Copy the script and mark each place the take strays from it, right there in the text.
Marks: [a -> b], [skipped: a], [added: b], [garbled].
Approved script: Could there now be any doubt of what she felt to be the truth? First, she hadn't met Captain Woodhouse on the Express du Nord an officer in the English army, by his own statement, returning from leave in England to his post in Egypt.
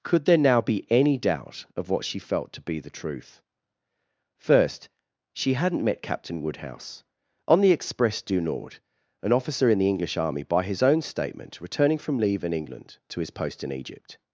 Could there now be any doubt of what she felt to be the truth? First, she hadn't met Captain Woodhouse on the Express du Nord an officer in the English army, by his own statement, returning from leave in England to his post in Egypt.